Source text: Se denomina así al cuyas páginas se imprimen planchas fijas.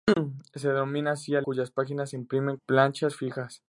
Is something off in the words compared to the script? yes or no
no